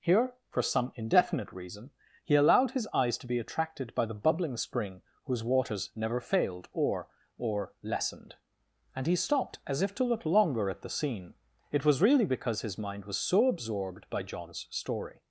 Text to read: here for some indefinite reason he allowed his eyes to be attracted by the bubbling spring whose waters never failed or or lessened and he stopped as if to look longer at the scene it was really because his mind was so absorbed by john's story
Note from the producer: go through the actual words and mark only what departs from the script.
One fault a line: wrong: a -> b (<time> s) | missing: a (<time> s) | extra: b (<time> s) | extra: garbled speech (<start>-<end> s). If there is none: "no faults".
no faults